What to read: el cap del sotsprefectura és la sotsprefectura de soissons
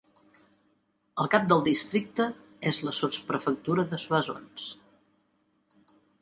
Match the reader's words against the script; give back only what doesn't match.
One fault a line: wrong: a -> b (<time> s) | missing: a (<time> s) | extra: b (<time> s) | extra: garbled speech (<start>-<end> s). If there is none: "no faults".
wrong: sotsprefectura -> districte (1.7 s)